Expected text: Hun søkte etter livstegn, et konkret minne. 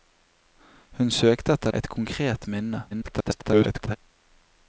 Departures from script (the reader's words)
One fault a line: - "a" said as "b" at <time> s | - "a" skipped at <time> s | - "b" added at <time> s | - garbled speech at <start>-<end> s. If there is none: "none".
- "livstegn" skipped at 1.7 s
- garbled speech at 2.9-4.0 s